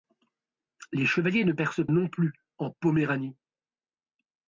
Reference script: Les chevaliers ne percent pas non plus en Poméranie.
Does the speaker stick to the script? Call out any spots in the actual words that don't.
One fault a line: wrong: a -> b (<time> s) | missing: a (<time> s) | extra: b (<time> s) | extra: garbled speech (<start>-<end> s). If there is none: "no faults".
missing: pas (1.9 s)